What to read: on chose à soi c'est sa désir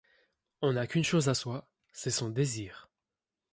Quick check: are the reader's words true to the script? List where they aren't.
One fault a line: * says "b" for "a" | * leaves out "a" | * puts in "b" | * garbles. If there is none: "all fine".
* puts in "n'a qu'une"
* says "son" for "sa"